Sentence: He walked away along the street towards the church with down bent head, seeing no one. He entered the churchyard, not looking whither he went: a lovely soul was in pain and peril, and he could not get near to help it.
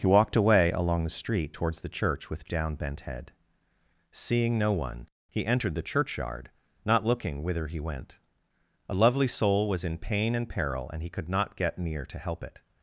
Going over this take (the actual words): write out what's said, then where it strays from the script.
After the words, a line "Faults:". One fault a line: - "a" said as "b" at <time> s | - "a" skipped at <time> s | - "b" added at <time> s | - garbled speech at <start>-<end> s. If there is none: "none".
He walked away along the street towards the church with down bent head, seeing no one. He entered the churchyard, not looking whither he went: a lovely soul was in pain and peril, and he could not get near to help it.
Faults:
none